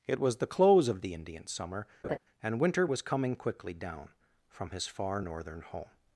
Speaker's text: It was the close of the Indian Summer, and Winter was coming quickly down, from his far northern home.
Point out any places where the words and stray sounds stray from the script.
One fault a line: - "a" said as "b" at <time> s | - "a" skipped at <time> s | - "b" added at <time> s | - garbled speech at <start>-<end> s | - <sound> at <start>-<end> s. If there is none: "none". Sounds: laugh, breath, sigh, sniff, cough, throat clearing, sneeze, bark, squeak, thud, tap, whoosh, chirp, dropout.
- laugh at 2.0-2.2 s